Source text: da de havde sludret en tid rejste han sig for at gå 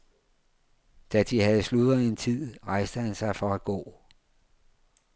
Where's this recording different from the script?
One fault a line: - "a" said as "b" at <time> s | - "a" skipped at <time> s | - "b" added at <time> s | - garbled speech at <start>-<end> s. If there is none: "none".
none